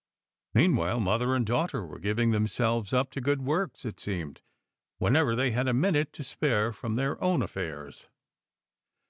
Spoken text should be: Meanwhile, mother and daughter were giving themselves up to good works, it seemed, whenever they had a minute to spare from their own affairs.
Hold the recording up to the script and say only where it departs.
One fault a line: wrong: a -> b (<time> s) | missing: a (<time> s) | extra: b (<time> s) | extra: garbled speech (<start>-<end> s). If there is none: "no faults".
no faults